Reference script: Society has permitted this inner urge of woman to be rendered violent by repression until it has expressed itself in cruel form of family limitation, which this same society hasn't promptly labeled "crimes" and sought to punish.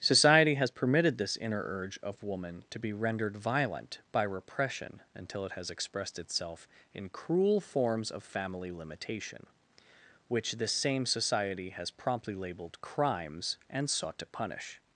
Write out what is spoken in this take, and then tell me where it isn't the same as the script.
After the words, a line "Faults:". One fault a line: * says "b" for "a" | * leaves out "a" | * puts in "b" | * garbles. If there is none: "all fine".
Society has permitted this inner urge of woman to be rendered violent by repression until it has expressed itself in cruel forms of family limitation, which this same society has promptly labeled "crimes" and sought to punish.
Faults:
* says "forms" for "form"
* says "has" for "hasn't"